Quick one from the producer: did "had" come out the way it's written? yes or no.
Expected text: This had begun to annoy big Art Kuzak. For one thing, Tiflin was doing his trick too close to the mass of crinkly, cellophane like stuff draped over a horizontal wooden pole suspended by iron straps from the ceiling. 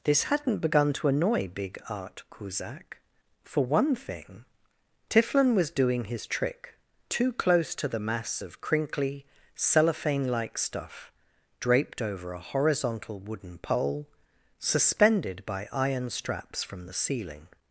no